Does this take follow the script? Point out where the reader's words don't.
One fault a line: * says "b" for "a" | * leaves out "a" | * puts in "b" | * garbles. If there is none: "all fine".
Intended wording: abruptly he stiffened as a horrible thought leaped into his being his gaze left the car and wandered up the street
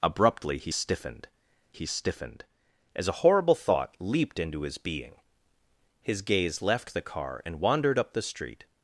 * puts in "he stiffened"